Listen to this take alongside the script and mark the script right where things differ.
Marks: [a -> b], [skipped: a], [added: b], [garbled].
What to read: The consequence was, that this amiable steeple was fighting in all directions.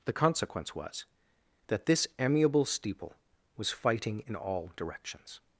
The consequence was, that this amiable steeple was fighting in all directions.